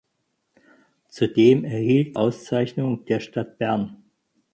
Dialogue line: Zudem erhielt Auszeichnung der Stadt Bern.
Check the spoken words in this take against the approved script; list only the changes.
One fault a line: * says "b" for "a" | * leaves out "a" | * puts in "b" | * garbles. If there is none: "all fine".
all fine